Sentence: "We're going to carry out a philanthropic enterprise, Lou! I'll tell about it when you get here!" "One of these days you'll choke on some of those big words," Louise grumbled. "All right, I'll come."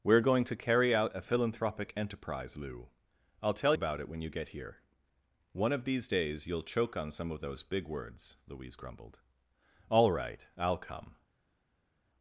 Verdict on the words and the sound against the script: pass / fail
pass